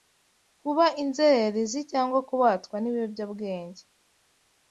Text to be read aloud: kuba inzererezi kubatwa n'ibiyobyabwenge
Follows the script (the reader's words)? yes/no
no